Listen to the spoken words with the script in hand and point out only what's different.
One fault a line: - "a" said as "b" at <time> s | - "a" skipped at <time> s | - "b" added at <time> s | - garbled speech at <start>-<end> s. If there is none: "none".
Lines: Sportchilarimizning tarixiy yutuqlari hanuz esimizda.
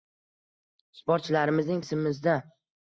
- "tarixiy yutuqlari hanuz" skipped at 1.9 s